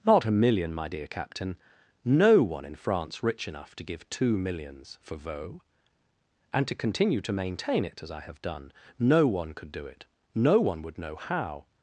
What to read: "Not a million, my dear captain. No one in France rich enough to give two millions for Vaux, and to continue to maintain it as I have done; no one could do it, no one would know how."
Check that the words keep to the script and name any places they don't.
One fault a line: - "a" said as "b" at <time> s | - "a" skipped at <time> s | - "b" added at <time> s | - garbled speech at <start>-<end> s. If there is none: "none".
none